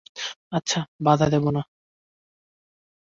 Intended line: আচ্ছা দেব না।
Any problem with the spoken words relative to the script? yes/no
yes